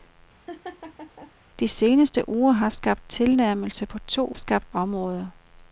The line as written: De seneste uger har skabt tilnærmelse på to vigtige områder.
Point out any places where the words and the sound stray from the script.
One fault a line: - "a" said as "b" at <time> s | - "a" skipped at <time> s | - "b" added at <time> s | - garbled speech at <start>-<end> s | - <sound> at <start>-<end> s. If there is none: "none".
- laugh at 0.5-1.3 s
- "vigtige" said as "skabt" at 4.3 s